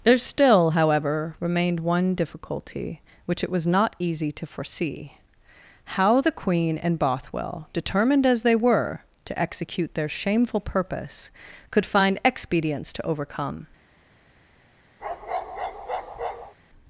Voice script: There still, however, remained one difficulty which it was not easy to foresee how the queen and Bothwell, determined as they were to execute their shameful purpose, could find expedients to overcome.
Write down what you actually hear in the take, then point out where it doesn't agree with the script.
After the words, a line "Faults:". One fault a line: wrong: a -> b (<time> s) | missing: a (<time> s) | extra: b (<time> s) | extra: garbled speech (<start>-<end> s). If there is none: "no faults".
There still, however, remained one difficulty which it was not easy to foresee how the queen and Bothwell, determined as they were to execute their shameful purpose, could find expedients to overcome.
Faults:
no faults